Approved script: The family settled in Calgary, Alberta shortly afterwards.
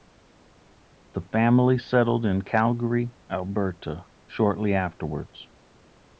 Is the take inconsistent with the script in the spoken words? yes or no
no